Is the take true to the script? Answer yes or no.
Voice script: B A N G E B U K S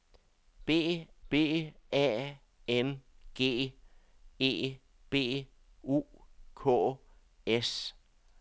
no